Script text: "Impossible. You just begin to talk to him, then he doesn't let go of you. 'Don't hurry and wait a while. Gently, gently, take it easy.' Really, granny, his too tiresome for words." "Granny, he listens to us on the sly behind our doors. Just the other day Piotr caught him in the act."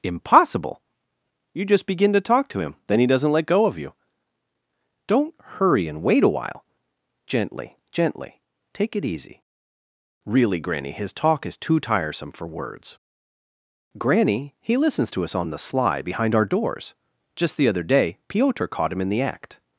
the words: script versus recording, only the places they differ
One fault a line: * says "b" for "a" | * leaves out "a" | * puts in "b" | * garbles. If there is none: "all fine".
* puts in "talk is"